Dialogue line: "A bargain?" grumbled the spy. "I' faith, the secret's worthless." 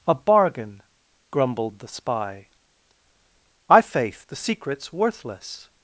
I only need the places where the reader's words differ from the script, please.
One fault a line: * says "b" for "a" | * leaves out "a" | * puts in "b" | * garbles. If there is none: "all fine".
all fine